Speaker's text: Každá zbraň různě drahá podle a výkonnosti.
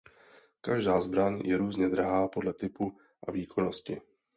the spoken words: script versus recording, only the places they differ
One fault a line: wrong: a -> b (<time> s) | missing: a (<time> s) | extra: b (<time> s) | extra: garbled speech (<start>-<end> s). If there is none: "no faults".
extra: je (1.4 s)
extra: typu (2.5 s)